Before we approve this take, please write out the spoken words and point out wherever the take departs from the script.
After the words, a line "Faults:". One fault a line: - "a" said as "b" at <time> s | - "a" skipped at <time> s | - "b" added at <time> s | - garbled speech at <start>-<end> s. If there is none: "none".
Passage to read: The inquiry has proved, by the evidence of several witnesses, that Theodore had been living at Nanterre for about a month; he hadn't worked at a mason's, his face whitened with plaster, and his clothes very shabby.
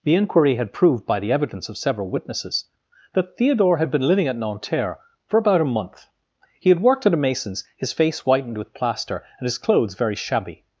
The inquiry had proved, by the evidence of several witnesses, that Theodore had been living at Nanterre for about a month; he had worked at a mason's, his face whitened with plaster, and his clothes very shabby.
Faults:
- "has" said as "had" at 0.6 s
- "hadn't" said as "had" at 6.7 s